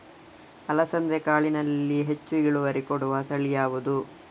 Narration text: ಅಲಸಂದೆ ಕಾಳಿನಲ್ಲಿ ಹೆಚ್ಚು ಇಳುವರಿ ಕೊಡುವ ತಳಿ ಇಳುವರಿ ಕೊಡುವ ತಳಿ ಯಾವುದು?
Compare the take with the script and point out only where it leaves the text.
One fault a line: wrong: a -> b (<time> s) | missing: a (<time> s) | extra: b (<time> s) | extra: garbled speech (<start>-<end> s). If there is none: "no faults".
missing: ಇಳುವರಿ ಕೊಡುವ ತಳಿ (3.5 s)